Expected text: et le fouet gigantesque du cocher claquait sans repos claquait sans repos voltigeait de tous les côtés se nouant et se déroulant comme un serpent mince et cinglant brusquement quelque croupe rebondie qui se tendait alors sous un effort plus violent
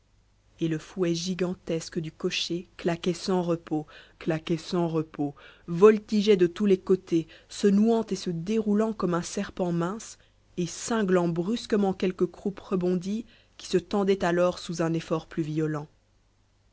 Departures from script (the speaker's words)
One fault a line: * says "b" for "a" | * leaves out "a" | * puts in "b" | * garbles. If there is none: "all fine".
all fine